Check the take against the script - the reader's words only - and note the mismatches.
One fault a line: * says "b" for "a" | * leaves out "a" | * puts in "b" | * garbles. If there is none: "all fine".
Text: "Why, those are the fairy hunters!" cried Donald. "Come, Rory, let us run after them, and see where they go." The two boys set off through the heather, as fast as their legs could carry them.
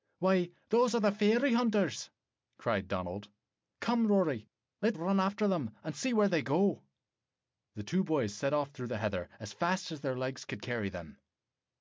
* leaves out "us"